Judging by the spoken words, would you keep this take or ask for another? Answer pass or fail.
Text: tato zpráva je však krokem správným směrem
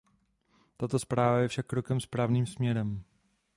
pass